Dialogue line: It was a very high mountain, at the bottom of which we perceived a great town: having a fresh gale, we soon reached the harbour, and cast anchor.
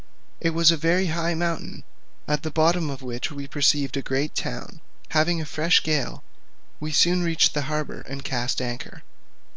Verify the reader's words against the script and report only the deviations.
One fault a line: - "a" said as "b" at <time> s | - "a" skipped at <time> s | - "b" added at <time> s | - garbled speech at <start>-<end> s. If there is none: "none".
none